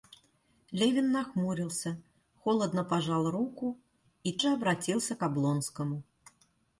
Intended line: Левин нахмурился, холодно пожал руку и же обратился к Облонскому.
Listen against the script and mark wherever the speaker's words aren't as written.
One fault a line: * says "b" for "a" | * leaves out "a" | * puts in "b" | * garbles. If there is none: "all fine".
all fine